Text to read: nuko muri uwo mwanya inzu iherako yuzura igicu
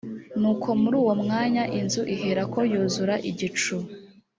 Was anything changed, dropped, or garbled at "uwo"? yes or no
no